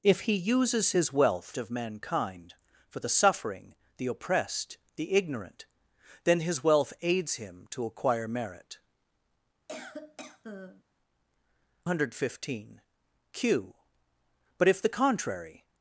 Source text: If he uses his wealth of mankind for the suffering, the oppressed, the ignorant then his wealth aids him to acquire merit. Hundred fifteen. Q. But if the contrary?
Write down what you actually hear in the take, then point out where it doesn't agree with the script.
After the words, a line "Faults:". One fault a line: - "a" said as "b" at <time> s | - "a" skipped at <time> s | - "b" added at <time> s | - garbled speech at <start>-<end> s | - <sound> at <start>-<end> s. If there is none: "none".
If he uses his wealth of mankind for the suffering, the oppressed, the ignorant then his wealth aids him to acquire merit. Hundred fifteen. Q. But if the contrary?
Faults:
- cough at 9.7-10.8 s